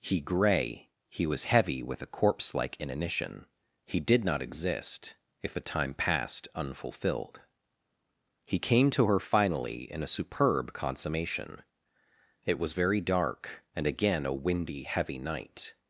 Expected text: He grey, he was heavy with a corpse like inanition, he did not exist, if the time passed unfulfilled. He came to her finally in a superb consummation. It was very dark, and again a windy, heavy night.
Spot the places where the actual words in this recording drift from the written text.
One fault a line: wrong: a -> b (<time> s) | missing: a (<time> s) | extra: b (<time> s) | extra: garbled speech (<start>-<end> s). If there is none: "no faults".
no faults